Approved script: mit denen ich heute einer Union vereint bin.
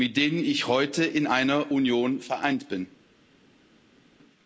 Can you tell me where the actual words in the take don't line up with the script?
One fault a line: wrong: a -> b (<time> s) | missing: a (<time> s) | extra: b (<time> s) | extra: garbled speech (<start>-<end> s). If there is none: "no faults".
extra: in (1.1 s)